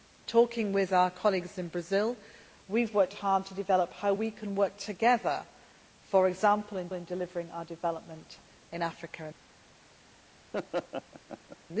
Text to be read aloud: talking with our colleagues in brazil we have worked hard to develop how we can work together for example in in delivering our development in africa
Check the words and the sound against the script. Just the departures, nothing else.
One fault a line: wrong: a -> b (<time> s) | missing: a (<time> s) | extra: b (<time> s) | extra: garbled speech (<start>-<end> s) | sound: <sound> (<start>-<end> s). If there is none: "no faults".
sound: laugh (10.5-11.6 s)